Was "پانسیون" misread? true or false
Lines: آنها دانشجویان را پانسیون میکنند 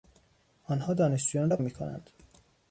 true